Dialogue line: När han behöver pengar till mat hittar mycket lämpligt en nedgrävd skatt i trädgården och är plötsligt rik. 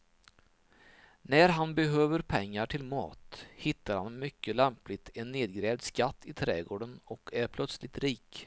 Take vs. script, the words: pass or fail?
fail